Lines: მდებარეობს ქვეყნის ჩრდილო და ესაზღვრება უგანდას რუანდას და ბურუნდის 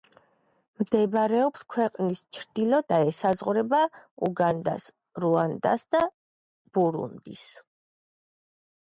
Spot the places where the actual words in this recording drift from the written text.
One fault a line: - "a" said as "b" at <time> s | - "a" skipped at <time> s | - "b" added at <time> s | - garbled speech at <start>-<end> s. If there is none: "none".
none